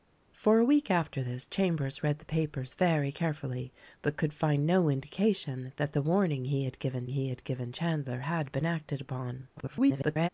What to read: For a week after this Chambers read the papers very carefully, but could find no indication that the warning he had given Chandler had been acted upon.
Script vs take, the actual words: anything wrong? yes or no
yes